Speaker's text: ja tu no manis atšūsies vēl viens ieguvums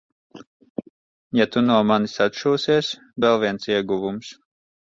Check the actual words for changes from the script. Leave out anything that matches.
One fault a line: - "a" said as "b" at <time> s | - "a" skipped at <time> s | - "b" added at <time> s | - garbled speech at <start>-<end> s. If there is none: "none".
none